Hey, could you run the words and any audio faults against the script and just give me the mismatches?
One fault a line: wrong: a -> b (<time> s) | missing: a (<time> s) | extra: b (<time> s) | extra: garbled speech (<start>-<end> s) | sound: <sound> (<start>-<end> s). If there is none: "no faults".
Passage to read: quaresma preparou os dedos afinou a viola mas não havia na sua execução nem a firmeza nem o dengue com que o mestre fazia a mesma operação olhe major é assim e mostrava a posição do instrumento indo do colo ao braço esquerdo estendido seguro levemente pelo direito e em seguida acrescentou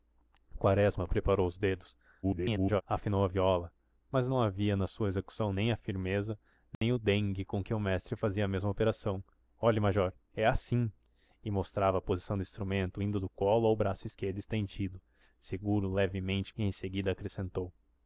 extra: garbled speech (2.2-2.8 s)
sound: dropout (6.7-6.8 s)
missing: pelo direito (16.5 s)